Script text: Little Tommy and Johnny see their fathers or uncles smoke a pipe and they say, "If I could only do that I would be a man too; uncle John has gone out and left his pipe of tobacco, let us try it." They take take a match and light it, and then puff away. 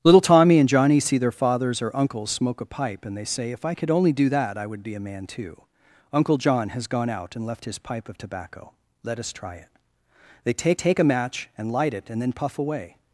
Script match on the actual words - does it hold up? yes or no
yes